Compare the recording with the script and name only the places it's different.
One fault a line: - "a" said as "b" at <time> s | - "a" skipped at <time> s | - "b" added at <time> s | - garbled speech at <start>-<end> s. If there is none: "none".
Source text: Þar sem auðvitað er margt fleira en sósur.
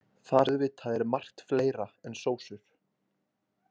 - "sem" skipped at 0.5 s